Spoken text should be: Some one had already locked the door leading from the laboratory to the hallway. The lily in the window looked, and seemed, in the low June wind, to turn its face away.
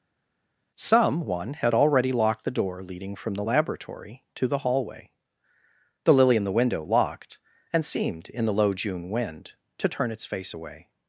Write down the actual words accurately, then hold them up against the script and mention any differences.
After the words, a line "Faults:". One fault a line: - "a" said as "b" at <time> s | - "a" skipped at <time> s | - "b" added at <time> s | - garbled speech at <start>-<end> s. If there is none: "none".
Some one had already locked the door leading from the laboratory to the hallway. The lily in the window locked, and seemed, in the low June wind, to turn its face away.
Faults:
- "looked" said as "locked" at 6.8 s